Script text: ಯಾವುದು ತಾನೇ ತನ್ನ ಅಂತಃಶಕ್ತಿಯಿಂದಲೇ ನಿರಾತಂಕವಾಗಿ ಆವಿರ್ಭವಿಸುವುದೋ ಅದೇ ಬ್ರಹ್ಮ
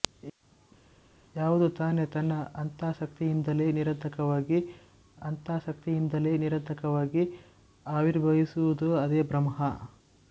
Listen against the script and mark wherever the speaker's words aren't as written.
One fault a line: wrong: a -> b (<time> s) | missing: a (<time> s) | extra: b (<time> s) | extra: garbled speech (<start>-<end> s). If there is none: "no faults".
extra: ಅಂತಃಶಕ್ತಿಯಿಂದಲೇ ನಿರಾತಂಕವಾಗಿ (5.2 s)